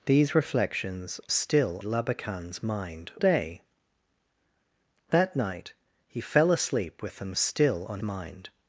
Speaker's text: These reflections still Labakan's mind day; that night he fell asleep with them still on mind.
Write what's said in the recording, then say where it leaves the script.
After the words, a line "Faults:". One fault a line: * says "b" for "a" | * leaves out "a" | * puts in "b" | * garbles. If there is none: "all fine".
These reflections still Labakan's mind day; that night he fell asleep with them still on mind.
Faults:
all fine